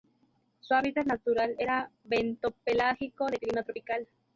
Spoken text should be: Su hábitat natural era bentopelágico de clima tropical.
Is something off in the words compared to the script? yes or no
no